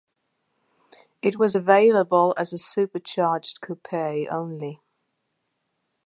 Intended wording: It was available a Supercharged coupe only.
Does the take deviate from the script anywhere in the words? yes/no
yes